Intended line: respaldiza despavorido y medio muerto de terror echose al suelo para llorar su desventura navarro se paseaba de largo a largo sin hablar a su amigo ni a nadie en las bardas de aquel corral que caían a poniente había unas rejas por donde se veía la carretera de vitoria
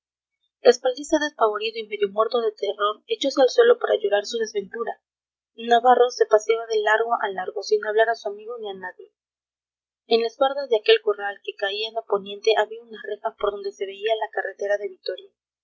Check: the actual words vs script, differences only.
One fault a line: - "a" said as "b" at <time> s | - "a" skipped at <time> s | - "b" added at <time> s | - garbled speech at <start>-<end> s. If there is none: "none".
none